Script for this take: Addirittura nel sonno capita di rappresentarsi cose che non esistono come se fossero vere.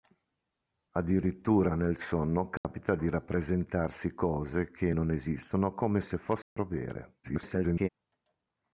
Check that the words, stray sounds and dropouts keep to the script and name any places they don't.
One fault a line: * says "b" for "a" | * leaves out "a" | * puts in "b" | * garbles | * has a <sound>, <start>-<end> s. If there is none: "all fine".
* has a dropout, 2.6-2.6 s
* has a dropout, 6.4-6.6 s
* garbles